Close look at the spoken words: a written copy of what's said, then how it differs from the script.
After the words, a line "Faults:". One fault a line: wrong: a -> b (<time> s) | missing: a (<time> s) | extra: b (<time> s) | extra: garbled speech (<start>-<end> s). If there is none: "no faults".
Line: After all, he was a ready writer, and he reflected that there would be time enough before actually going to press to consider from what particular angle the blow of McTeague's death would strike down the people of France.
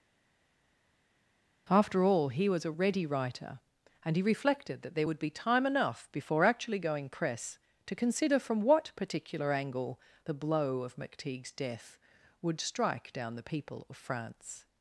After all, he was a ready writer, and he reflected that there would be time enough before actually going press to consider from what particular angle the blow of McTeague's death would strike down the people of France.
Faults:
missing: to (7.1 s)